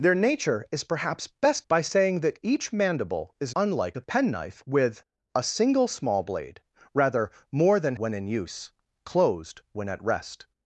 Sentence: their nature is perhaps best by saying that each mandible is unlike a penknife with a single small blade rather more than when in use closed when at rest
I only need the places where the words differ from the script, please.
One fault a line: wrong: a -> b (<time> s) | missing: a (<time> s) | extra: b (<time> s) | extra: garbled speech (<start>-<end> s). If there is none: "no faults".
no faults